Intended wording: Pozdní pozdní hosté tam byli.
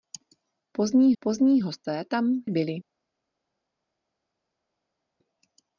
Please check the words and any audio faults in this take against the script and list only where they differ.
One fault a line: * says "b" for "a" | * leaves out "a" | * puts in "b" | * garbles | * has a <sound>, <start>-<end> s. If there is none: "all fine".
all fine